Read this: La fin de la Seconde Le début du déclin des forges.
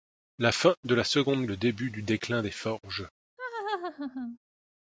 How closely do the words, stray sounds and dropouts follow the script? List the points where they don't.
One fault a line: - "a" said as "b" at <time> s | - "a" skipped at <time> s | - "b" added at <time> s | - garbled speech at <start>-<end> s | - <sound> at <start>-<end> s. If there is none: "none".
- laugh at 3.4-4.4 s